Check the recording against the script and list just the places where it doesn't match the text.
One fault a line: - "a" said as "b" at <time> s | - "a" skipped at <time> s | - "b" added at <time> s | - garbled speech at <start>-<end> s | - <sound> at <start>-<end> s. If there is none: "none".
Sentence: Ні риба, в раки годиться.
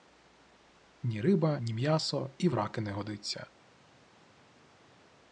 - "ні м'ясо і" added at 1.6 s
- "не" added at 2.8 s